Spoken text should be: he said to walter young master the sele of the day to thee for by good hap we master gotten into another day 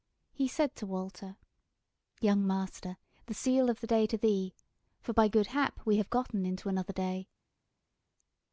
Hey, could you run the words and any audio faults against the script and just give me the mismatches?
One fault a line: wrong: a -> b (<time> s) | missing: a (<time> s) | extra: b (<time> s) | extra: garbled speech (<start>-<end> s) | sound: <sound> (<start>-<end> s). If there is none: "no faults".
wrong: master -> have (6.0 s)